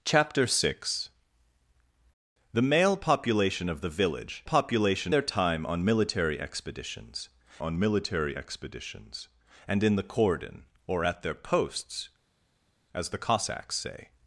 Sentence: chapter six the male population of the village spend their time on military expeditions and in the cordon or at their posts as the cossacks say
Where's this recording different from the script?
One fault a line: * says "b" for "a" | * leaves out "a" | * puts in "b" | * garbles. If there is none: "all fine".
* says "population" for "spend"
* puts in "on military expeditions"